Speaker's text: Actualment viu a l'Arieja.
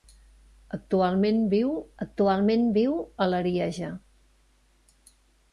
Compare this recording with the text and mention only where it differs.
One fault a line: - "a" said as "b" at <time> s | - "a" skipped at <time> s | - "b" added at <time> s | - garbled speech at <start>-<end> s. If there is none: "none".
- "actualment viu" added at 2.0 s